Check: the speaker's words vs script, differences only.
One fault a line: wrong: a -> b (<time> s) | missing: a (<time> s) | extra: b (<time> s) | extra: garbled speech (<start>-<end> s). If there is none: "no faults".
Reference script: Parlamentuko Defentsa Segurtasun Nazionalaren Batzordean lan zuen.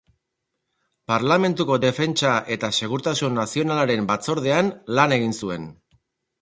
extra: eta (2.6 s)
extra: egin (5.2 s)